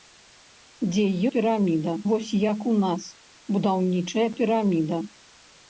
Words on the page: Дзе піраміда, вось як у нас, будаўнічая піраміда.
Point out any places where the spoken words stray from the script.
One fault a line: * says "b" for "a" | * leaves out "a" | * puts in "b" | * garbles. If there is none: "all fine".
all fine